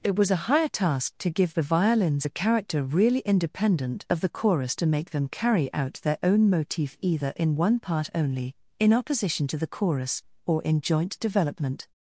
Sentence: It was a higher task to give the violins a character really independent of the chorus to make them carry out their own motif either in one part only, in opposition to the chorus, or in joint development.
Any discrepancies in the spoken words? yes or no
no